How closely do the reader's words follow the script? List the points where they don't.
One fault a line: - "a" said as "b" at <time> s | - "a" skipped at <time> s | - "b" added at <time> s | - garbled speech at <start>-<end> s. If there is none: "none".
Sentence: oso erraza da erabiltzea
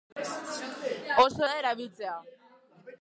- "erraza" skipped at 1.4 s